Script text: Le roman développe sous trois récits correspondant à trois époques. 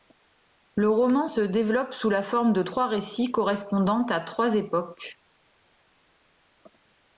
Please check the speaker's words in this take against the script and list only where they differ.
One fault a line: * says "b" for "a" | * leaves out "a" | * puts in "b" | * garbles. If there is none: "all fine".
* puts in "se"
* puts in "la forme de"